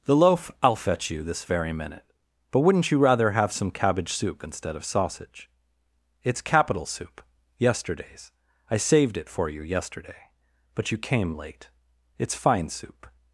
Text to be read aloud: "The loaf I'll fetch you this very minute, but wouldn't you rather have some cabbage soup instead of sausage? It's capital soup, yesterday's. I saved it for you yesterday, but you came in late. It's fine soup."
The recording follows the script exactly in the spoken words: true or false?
false